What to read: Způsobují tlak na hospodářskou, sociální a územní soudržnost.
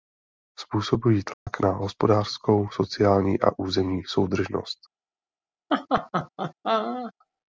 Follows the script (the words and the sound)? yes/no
no